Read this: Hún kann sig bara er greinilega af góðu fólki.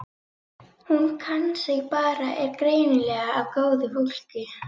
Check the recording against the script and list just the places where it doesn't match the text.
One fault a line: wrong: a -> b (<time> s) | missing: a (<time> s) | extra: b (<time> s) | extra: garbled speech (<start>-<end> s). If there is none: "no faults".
no faults